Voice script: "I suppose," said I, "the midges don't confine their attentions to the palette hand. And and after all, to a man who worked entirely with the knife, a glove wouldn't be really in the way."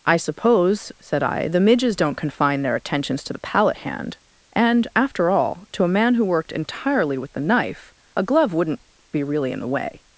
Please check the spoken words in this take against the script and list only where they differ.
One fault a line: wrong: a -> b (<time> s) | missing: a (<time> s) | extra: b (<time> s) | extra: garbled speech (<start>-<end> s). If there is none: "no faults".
missing: and (4.9 s)